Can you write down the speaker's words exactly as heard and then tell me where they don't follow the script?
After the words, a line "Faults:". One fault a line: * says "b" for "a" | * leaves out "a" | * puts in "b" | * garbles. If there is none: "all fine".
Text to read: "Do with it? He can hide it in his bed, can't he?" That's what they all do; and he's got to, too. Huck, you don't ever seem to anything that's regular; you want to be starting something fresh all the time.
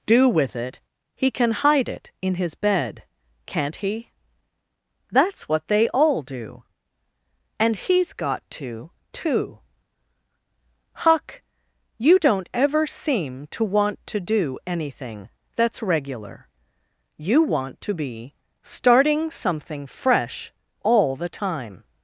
"Do with it? He can hide it in his bed, can't he?" That's what they all do; and he's got to, too. Huck, you don't ever seem to want to do anything that's regular; you want to be starting something fresh all the time.
Faults:
* puts in "want to do"